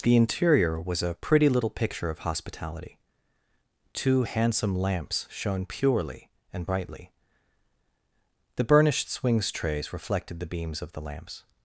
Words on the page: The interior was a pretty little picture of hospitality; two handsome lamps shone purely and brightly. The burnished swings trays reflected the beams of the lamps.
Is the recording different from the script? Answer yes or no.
no